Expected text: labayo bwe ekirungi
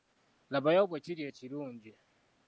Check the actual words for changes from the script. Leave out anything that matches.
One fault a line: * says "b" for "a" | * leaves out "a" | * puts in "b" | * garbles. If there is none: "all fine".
* puts in "kiri"